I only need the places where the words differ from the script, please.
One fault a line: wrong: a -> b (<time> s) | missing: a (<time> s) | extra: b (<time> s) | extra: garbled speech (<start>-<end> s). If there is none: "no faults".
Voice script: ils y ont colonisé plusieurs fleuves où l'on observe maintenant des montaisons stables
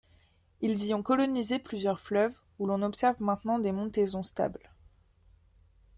no faults